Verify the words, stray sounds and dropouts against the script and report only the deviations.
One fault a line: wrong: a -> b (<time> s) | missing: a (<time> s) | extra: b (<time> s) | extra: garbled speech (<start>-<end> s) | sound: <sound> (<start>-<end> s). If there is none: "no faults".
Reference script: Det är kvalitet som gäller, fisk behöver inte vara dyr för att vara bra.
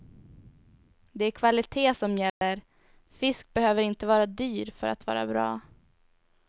sound: dropout (2.3-2.4 s)